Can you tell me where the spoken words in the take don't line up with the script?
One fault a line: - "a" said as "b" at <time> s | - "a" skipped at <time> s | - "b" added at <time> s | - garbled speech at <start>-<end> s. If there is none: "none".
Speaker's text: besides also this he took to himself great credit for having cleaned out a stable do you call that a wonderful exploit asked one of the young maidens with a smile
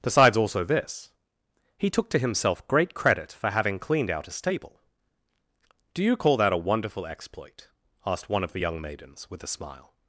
none